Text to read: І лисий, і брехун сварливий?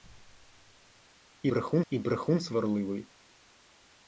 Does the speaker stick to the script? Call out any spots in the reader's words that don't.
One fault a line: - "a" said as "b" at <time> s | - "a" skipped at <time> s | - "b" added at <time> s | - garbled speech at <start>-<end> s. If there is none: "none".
- "лисий" said as "брехун" at 1.4 s